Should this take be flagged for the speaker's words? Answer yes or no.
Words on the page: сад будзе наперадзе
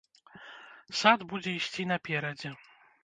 yes